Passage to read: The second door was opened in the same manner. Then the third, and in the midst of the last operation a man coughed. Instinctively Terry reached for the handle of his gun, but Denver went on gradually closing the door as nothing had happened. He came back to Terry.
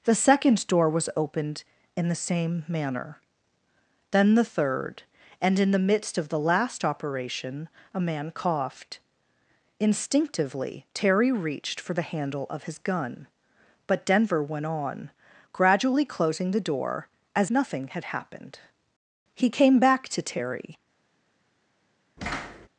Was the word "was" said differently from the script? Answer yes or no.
no